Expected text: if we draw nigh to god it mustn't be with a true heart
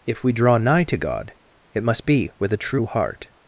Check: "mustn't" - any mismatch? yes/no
yes